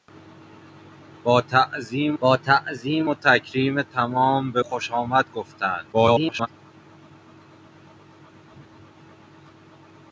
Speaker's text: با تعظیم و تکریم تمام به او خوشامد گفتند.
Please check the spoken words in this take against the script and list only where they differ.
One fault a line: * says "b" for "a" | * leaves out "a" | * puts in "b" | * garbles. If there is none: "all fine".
* puts in "با تعظیم"
* leaves out "او"
* garbles